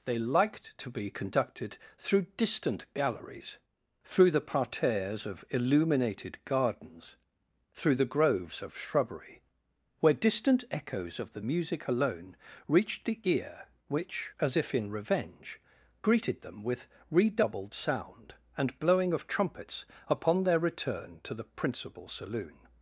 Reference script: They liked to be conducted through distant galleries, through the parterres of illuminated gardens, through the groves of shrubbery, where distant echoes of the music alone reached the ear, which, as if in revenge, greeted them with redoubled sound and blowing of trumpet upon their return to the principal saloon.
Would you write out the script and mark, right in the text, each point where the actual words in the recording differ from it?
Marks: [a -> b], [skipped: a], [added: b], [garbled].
They liked to be conducted through distant galleries, through the parterres of illuminated gardens, through the groves of shrubbery, where distant echoes of the music alone reached the ear, which, as if in revenge, greeted them with redoubled sound and blowing of [trumpet -> trumpets] upon their return to the principal saloon.